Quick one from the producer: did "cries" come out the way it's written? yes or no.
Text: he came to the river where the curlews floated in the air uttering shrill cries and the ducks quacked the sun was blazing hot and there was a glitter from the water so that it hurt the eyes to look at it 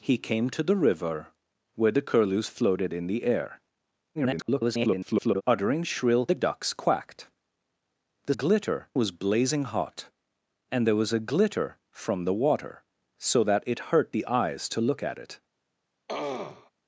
no